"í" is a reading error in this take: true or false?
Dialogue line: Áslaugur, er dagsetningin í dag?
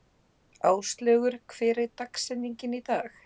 false